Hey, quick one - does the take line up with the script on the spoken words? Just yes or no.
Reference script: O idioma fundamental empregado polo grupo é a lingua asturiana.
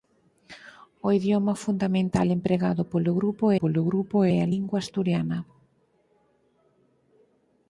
no